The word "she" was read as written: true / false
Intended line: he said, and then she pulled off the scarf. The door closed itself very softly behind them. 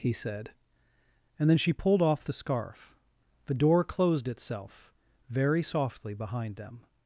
true